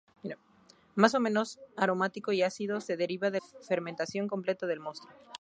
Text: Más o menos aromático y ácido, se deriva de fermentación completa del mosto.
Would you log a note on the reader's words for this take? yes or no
no